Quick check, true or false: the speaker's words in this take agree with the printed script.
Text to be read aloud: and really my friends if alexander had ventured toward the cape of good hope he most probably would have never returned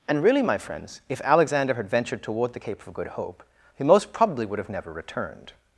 true